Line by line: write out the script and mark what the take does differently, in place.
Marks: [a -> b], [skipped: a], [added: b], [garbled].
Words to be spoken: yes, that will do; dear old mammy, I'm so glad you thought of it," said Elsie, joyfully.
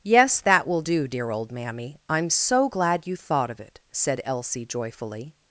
yes, that will do; dear old mammy, I'm so glad you thought of it," said Elsie, joyfully.